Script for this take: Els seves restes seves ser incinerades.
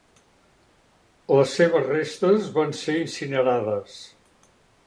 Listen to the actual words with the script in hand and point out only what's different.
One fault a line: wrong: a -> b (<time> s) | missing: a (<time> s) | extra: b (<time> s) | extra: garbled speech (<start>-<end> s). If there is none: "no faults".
wrong: Els -> Les (1.4 s)
wrong: seves -> van (2.6 s)